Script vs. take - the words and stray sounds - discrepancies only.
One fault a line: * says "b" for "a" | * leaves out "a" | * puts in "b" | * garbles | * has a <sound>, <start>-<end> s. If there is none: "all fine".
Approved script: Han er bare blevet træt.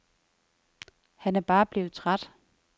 all fine